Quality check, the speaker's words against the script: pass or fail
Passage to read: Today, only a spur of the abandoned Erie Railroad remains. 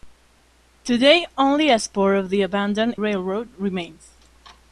fail